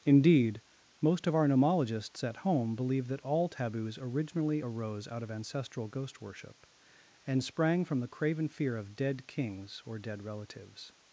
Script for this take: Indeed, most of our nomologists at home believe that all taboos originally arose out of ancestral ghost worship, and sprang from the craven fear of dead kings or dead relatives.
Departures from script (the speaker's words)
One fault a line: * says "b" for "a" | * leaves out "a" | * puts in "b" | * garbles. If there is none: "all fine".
all fine